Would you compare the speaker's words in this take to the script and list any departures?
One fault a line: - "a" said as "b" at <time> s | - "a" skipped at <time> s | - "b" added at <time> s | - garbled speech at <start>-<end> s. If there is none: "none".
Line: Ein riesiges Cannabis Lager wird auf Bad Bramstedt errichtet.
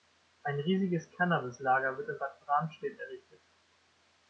- "auf" said as "in" at 2.1 s